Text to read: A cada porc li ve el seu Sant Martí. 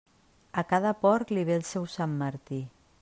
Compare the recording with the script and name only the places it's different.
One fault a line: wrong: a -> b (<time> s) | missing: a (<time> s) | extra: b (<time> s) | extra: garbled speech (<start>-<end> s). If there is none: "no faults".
no faults